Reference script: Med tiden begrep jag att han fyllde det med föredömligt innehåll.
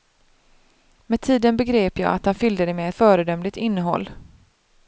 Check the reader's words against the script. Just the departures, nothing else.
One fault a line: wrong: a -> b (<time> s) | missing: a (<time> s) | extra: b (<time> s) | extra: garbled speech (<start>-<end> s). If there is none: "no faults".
no faults